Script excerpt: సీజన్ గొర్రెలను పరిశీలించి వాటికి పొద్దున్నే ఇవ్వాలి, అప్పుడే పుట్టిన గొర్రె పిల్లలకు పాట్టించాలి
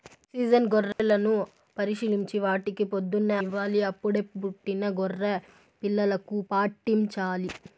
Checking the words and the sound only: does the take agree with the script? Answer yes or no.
no